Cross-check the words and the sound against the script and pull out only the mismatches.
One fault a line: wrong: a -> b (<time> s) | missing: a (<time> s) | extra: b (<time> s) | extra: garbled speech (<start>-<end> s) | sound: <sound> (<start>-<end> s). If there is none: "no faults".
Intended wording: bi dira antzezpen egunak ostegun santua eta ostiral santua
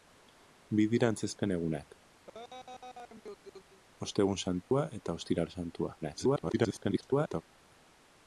sound: laugh (2.3-3.8 s)
sound: dropout (4.6-4.7 s)
extra: garbled speech (6.0-7.4 s)